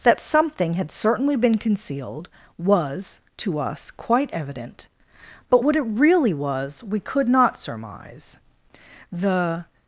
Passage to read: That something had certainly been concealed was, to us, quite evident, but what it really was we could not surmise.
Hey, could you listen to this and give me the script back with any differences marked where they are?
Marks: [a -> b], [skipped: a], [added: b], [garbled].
That something had certainly been concealed was, to us, quite evident, but what it really was we could not surmise. [added: The]